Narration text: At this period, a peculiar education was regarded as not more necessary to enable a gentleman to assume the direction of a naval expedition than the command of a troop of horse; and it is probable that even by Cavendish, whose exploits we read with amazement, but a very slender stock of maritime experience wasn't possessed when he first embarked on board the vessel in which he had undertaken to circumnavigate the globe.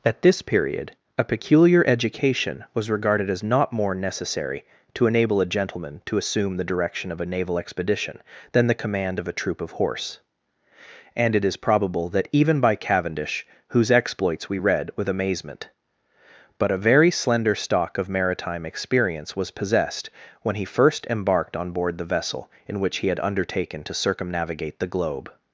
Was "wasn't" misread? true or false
true